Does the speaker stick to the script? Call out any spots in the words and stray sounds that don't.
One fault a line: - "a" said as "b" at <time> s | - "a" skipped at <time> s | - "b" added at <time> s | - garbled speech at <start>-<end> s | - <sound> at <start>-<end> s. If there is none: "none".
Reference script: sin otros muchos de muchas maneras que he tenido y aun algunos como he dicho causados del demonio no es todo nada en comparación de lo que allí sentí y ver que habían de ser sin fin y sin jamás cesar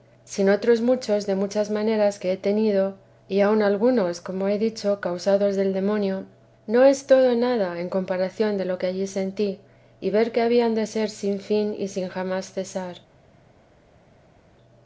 none